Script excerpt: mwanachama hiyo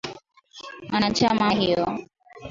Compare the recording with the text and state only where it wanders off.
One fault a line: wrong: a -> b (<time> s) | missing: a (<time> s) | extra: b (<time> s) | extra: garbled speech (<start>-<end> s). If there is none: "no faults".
no faults